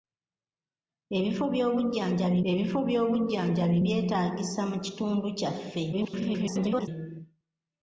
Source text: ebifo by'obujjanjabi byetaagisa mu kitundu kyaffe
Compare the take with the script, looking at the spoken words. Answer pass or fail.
fail